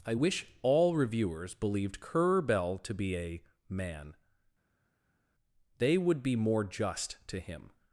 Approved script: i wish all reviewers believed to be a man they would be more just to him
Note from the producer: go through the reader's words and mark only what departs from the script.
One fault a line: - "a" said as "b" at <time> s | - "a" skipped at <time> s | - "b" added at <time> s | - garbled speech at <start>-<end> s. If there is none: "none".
- "currer bell" added at 2.0 s